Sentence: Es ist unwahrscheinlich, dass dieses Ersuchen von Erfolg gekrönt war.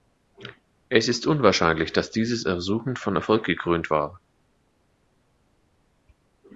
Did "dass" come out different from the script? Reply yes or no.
no